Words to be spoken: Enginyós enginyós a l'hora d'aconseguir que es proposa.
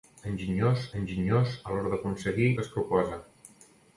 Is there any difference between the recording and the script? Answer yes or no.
no